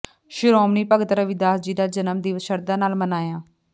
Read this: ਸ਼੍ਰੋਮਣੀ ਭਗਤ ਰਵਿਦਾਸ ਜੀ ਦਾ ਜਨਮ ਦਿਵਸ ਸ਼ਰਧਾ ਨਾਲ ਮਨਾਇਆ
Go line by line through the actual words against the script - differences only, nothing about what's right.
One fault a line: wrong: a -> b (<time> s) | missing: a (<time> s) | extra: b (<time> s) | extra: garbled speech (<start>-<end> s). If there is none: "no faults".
no faults